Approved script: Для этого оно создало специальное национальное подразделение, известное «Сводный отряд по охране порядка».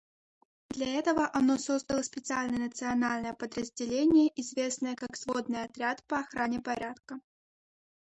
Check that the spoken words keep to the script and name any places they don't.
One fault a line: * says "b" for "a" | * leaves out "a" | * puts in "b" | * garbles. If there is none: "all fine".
* puts in "как"